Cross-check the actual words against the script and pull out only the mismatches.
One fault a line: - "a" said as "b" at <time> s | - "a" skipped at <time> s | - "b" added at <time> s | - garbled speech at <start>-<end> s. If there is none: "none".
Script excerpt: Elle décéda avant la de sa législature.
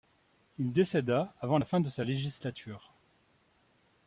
- "Elle" said as "Il" at 0.6 s
- "fin" added at 1.7 s